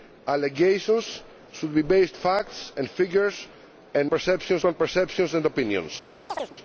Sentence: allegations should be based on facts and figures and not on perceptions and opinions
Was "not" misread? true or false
true